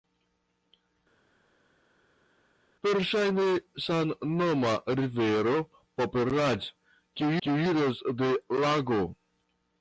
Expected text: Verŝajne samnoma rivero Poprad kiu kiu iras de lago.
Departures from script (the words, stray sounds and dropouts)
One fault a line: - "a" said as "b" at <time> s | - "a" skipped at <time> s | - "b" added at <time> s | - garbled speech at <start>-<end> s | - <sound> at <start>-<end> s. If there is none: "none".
none